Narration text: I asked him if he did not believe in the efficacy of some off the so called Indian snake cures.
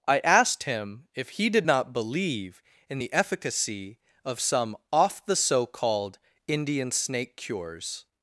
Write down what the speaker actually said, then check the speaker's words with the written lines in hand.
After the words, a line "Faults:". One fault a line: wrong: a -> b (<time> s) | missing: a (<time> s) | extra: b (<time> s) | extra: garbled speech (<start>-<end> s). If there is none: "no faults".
I asked him if he did not believe in the efficacy of some off the so called Indian snake cures.
Faults:
no faults